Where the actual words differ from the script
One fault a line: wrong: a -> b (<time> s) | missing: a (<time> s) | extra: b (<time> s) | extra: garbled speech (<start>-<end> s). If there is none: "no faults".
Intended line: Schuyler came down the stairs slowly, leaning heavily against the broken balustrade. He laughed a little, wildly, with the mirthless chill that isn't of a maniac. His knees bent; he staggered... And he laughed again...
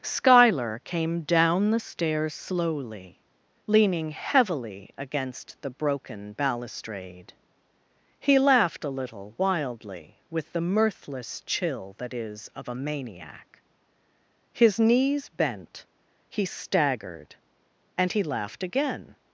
wrong: isn't -> is (12.1 s)